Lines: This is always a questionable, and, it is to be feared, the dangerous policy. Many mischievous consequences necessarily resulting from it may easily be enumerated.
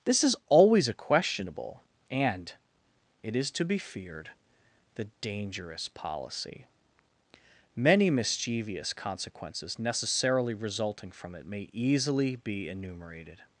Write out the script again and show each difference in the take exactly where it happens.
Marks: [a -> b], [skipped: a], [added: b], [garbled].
This is always a questionable, and, it is to be feared, the dangerous policy. Many mischievous consequences necessarily resulting from it may easily be enumerated.